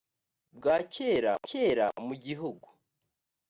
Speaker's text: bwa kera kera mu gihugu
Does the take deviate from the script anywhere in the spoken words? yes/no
no